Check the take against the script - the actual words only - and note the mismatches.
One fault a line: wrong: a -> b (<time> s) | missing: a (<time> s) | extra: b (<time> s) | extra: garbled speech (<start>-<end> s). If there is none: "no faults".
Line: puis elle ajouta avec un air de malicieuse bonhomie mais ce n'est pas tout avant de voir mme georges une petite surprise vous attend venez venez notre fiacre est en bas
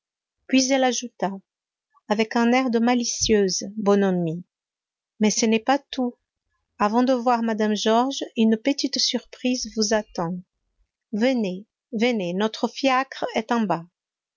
no faults